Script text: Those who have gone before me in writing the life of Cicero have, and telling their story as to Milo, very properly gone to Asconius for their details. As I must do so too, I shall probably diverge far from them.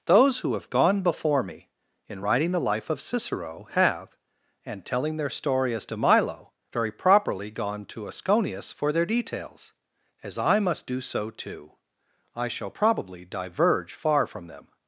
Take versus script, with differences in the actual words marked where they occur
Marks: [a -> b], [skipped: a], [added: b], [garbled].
Those who have gone before me in writing the life of Cicero have, and telling their story as to Milo, very properly gone to Asconius for their details. As I must do so too, I shall probably diverge far from them.